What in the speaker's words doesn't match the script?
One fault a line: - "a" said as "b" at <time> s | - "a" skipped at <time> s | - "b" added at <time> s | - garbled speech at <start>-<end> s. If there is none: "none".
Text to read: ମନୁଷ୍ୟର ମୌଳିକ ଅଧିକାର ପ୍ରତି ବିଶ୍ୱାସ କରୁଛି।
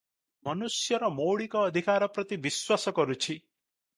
none